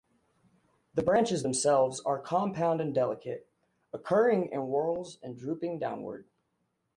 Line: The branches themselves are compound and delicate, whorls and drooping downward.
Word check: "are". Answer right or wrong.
right